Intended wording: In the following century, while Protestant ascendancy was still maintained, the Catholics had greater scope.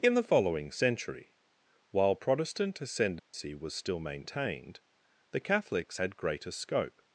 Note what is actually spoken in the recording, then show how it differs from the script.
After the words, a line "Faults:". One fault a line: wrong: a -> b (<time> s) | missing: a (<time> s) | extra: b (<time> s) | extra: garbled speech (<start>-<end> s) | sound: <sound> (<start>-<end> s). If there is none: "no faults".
In the following century, while Protestant ascendancy was still maintained, the Catholics had greater scope.
Faults:
sound: dropout (3.2-3.3 s)